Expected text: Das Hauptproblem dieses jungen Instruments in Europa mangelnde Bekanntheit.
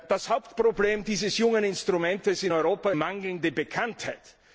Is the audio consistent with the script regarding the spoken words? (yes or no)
yes